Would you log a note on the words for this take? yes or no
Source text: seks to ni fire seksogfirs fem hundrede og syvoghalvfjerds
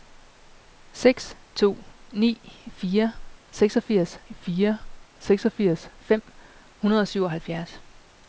yes